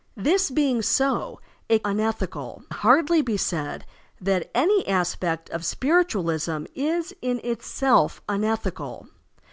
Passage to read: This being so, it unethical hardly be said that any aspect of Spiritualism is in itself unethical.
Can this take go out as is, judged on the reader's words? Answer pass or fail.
pass